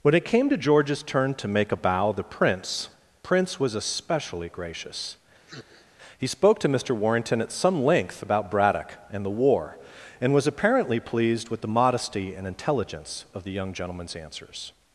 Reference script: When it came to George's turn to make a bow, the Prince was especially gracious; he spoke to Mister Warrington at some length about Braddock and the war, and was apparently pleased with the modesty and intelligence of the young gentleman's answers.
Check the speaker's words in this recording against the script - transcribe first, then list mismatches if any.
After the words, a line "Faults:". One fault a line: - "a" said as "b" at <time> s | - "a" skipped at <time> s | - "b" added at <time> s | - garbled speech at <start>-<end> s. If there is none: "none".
When it came to George's turn to make a bow, the Prince Prince was especially gracious; he spoke to Mister Warrington at some length about Braddock and the war, and was apparently pleased with the modesty and intelligence of the young gentleman's answers.
Faults:
- "Prince" added at 3.2 s